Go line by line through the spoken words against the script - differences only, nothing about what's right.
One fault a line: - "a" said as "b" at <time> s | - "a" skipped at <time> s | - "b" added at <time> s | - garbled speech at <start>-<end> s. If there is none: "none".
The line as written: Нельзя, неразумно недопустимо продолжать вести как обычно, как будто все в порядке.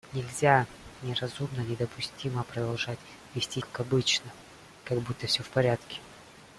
none